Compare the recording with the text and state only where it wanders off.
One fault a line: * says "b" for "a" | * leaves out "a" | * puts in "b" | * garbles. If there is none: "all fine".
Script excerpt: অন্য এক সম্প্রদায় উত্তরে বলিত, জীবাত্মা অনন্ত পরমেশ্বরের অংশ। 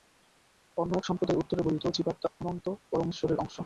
all fine